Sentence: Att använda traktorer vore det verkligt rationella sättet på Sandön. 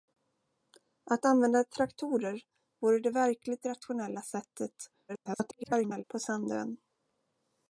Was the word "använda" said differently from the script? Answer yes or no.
no